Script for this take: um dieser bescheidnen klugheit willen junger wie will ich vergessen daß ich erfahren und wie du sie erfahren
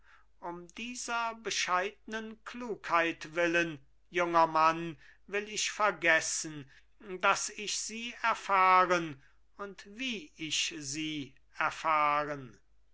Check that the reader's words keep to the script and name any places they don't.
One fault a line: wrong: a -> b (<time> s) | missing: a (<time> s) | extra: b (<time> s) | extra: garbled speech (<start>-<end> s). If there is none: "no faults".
wrong: wie -> mann (4.5 s)
extra: sie (7.8 s)
wrong: du -> ich (10.4 s)